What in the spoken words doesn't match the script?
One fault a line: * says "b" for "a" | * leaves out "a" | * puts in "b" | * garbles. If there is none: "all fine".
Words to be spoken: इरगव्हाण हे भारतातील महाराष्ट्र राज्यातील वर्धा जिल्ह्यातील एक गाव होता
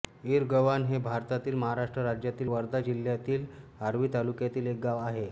* puts in "आर्वी तालुक्यातील"
* says "आहे" for "होता"